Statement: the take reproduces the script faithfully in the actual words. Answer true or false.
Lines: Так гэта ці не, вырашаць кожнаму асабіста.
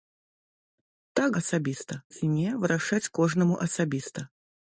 false